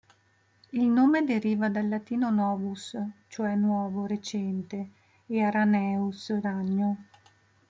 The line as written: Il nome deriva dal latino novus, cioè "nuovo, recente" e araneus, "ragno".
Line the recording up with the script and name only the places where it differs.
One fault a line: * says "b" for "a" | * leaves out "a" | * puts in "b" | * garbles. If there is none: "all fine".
all fine